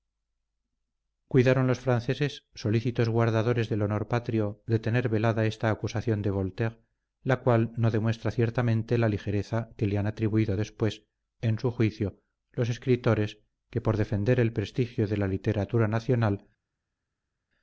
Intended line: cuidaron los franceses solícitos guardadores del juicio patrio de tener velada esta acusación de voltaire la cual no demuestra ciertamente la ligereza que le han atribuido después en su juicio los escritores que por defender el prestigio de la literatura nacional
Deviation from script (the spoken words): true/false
true